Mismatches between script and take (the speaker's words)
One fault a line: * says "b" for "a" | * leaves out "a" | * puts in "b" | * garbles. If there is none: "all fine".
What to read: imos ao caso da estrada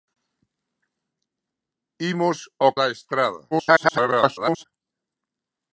* leaves out "caso"
* garbles